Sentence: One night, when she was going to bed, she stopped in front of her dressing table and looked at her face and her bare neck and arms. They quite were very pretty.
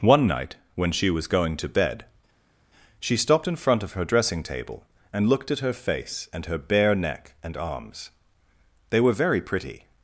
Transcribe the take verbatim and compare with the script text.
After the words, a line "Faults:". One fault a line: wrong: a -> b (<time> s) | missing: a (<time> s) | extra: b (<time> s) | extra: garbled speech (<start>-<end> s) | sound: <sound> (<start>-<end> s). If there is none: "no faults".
One night, when she was going to bed, she stopped in front of her dressing table and looked at her face and her bare neck and arms. They were very pretty.
Faults:
missing: quite (9.0 s)